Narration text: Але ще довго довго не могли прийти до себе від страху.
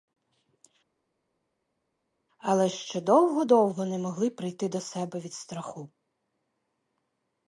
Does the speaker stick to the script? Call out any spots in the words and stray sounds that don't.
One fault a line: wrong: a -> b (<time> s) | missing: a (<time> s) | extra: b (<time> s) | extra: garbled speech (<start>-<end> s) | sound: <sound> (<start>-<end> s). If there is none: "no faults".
no faults